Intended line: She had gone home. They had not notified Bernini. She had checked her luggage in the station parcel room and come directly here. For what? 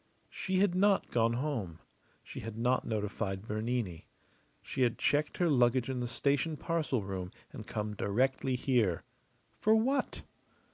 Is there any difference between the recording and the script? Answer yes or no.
yes